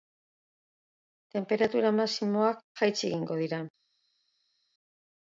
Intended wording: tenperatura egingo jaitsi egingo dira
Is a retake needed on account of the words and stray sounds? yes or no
yes